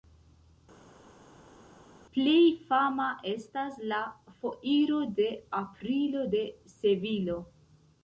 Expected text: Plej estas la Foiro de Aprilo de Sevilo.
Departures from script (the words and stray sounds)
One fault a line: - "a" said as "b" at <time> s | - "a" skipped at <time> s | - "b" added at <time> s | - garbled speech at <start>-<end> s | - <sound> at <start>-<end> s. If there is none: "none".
- "fama" added at 2.7 s